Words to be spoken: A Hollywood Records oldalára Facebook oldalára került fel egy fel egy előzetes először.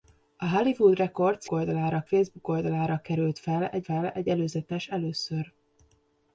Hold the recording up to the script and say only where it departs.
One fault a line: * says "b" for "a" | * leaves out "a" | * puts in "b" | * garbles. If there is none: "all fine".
all fine